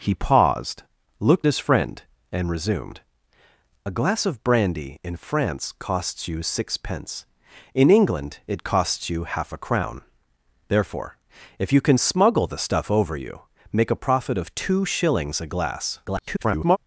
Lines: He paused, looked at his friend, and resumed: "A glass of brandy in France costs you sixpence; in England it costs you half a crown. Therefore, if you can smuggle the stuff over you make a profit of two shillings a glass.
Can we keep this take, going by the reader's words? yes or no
no